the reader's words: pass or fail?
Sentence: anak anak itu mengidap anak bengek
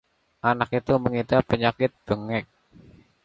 fail